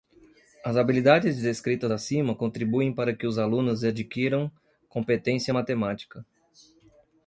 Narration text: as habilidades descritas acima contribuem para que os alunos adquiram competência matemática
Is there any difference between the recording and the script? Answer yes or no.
no